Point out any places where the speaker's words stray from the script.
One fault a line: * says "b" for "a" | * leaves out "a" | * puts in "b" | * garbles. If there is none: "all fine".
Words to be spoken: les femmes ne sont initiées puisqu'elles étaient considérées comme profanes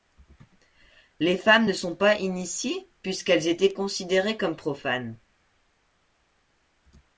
* puts in "pas"